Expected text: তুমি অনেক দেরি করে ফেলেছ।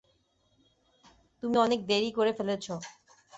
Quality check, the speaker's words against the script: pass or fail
pass